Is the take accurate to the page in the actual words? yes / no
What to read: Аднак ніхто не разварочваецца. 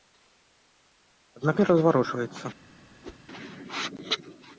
no